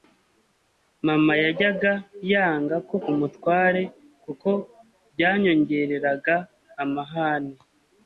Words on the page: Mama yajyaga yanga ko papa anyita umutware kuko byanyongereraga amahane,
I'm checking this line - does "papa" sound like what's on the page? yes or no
no